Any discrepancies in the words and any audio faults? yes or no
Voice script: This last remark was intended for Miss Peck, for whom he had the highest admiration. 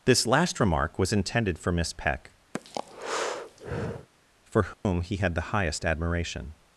yes